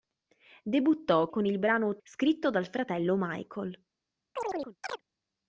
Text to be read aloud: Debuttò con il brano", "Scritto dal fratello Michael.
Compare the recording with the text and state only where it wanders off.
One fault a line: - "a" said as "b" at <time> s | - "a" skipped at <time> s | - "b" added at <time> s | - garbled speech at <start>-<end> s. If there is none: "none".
none